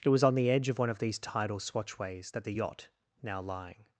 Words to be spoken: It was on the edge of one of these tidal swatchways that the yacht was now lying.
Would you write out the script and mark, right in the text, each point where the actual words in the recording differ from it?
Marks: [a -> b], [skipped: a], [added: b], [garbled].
It was on the edge of one of these tidal swatchways that the yacht [skipped: was] now lying.